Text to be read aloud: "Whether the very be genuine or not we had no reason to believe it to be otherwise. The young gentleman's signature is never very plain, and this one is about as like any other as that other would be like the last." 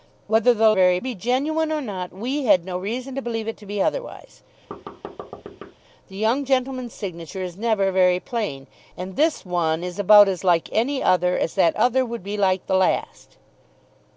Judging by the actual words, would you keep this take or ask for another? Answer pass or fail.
pass